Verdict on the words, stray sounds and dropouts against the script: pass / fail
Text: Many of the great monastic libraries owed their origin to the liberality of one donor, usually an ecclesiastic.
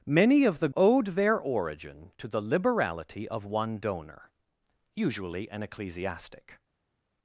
fail